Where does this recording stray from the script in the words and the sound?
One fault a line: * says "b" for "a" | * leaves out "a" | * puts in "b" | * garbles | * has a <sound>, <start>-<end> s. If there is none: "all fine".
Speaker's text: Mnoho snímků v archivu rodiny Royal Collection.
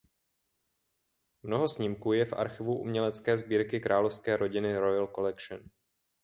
* puts in "je"
* puts in "umělecké sbírky královské"